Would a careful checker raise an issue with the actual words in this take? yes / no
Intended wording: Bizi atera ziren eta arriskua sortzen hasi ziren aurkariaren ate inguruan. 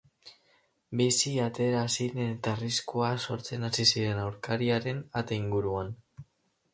no